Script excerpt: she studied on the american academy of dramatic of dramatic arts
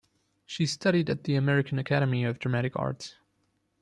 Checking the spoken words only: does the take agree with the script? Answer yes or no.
no